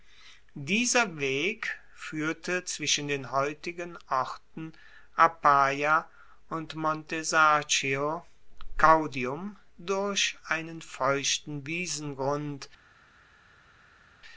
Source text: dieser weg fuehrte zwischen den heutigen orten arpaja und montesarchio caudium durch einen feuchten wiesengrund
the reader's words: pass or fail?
pass